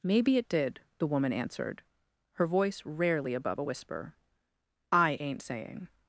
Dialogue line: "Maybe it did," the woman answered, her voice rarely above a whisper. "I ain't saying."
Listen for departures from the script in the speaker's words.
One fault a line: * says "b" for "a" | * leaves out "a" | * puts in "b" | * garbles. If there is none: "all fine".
all fine